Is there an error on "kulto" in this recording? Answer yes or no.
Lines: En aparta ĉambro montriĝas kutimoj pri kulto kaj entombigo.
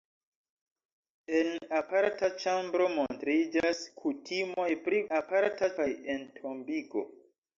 yes